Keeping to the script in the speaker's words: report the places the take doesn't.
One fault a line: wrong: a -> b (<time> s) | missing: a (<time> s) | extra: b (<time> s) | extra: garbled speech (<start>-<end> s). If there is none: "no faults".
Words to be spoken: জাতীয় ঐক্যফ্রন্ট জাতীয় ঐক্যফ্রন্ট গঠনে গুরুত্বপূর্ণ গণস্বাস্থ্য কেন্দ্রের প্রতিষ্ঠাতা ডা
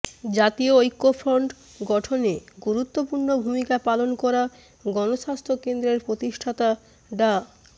wrong: জাতীয় ঐক্যফ্রন্ট গঠনে গুরুত্বপূর্ণ -> গঠনে গুরুত্বপূর্ণ ভূমিকা পালন করা (1.8 s)